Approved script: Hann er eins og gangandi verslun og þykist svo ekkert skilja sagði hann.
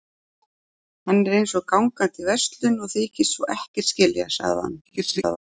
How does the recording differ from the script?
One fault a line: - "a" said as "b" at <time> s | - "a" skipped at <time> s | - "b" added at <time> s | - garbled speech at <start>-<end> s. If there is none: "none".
- garbled speech at 4.9-5.4 s